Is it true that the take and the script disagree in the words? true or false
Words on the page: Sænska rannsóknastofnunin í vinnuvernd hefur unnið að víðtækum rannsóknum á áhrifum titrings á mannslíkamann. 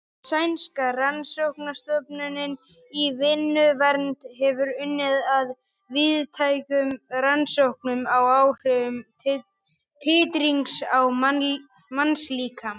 false